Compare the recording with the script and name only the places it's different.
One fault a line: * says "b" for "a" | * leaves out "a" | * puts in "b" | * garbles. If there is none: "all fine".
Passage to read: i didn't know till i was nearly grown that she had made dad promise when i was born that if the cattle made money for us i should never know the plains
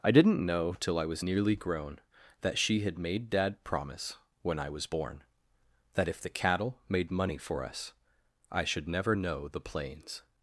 all fine